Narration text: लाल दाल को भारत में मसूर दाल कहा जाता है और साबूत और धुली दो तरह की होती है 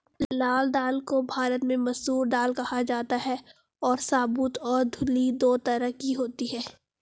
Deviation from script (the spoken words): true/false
false